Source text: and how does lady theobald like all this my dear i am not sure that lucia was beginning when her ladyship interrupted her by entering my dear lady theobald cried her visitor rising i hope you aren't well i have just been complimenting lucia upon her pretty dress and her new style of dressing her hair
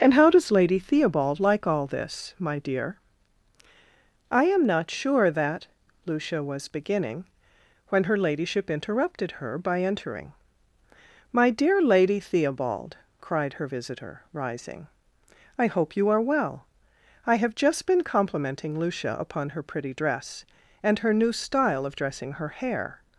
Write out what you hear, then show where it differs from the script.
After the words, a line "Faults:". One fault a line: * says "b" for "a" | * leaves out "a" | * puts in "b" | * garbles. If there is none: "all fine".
and how does lady theobald like all this my dear i am not sure that lucia was beginning when her ladyship interrupted her by entering my dear lady theobald cried her visitor rising i hope you are well i have just been complimenting lucia upon her pretty dress and her new style of dressing her hair
Faults:
* says "are" for "aren't"